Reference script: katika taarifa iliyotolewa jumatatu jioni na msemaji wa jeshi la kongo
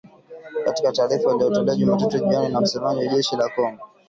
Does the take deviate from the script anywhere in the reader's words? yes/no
no